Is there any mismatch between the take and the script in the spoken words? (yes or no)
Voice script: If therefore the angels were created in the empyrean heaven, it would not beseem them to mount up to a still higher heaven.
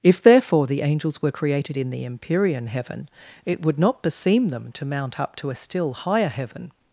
no